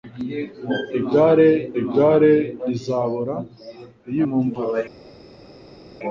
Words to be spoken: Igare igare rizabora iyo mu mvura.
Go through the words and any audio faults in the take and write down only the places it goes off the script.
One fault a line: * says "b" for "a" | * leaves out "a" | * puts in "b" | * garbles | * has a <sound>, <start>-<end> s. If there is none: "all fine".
all fine